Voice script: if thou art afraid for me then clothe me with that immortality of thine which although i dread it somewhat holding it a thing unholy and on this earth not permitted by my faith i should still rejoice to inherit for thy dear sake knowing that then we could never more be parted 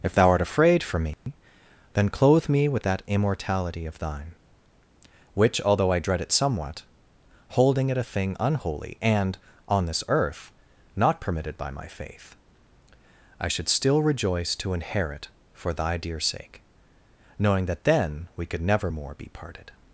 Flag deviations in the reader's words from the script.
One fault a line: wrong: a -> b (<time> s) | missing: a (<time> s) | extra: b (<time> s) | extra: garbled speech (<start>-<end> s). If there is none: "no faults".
no faults